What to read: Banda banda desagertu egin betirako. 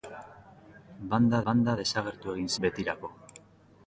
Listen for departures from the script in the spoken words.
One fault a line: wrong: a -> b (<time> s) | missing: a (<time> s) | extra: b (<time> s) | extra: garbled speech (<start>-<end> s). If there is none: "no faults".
no faults